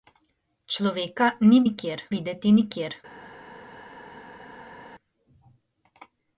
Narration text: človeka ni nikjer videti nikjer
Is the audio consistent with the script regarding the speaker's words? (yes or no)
yes